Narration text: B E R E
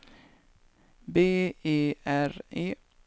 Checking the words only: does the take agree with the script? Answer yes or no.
yes